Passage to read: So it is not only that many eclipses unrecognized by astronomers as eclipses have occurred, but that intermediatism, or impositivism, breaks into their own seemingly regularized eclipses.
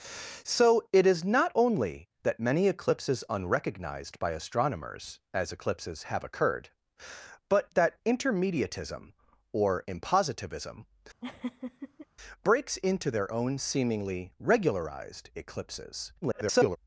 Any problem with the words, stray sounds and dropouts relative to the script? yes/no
yes